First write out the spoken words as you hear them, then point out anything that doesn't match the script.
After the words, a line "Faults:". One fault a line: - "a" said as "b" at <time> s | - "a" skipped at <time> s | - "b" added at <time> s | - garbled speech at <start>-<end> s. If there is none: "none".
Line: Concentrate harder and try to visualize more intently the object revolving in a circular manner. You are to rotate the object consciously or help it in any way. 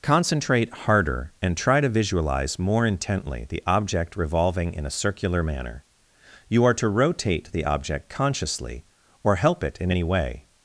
Concentrate harder and try to visualize more intently the object revolving in a circular manner. You are to rotate the object consciously or help it in any way.
Faults:
none